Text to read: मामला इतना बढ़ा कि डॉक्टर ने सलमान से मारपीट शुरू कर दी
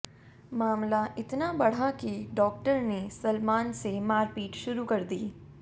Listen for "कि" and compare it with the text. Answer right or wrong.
right